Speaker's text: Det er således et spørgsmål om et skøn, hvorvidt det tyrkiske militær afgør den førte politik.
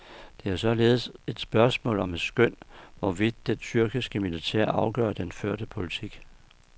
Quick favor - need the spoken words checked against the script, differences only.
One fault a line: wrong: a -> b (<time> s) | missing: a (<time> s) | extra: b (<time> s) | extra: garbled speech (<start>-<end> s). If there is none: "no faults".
no faults